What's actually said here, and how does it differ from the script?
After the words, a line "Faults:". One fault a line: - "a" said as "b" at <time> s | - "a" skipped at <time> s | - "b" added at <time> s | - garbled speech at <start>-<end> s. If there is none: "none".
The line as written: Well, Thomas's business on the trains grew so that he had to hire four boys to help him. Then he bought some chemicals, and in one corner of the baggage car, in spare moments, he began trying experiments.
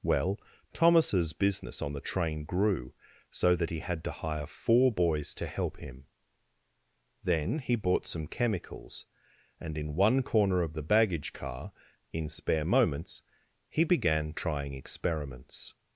Well, Thomas's business on the train grew so that he had to hire four boys to help him. Then he bought some chemicals, and in one corner of the baggage car, in spare moments, he began trying experiments.
Faults:
- "trains" said as "train" at 2.0 s